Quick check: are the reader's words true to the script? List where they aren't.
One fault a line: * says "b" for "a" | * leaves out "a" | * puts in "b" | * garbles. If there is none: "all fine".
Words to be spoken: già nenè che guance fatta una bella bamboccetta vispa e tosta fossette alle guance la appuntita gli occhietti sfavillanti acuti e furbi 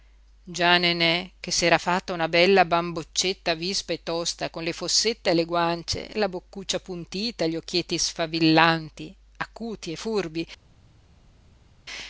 * says "s'era" for "guance"
* puts in "con le"
* puts in "boccuccia"